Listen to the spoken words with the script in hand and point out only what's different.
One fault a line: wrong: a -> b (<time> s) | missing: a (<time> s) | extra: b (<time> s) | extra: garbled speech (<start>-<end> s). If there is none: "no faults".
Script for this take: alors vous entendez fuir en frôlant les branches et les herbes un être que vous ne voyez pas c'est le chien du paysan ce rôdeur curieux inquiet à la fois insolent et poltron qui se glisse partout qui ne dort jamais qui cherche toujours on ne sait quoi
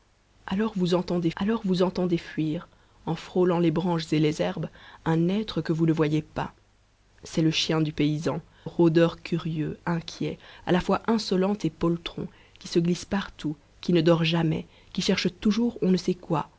extra: alors vous entendez (1.4 s)
missing: ce (8.4 s)